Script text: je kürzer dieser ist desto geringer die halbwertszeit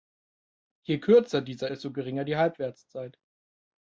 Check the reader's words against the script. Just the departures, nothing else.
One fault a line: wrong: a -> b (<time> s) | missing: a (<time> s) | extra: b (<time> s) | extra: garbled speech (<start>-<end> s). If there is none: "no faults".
missing: ist (1.7 s)